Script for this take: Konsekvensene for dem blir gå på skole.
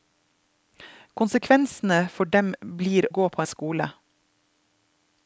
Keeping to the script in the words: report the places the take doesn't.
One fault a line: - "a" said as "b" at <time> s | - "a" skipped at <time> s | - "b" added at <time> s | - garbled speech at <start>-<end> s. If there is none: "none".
none